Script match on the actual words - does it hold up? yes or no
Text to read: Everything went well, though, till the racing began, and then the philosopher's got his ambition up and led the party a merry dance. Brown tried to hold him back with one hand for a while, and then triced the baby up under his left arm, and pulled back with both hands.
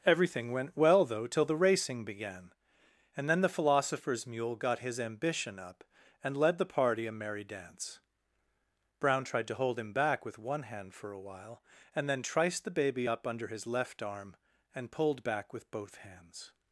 no